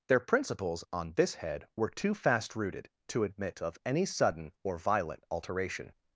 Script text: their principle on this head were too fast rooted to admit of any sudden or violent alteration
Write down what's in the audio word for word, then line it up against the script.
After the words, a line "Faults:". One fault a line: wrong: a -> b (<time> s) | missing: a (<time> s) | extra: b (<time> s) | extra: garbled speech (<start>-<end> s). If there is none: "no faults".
their principles on this head were too fast rooted to admit of any sudden or violent alteration
Faults:
wrong: principle -> principles (0.2 s)